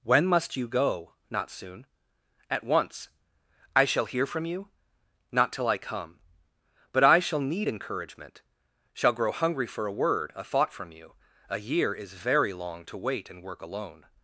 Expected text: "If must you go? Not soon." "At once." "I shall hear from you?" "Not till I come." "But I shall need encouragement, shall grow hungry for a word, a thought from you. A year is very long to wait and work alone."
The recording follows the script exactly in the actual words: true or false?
false